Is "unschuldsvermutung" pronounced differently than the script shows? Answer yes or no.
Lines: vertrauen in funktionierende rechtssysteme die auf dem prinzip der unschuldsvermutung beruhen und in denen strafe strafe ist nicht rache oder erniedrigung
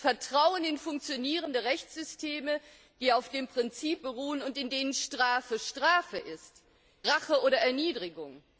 yes